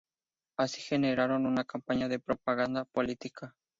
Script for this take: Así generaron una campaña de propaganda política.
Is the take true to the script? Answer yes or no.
yes